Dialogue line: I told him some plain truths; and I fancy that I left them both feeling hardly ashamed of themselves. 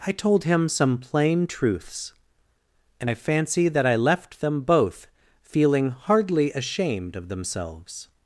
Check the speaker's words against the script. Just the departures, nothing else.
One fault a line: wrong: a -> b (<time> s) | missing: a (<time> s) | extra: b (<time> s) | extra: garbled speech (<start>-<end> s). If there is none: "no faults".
no faults